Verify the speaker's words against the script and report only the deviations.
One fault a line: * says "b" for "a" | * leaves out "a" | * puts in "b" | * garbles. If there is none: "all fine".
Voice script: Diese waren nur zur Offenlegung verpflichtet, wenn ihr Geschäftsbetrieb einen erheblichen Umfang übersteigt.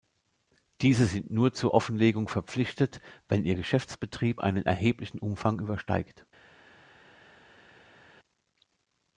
* says "sind" for "waren"